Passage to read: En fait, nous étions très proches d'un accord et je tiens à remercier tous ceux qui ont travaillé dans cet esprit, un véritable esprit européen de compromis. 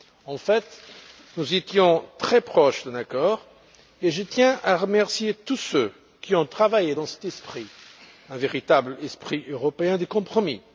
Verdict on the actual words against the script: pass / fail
pass